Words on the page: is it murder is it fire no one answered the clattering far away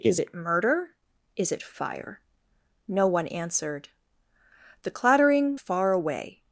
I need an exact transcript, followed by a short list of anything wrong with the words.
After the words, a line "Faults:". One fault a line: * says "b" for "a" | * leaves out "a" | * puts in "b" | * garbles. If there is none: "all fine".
is it murder is it fire no one answered the clattering far away
Faults:
all fine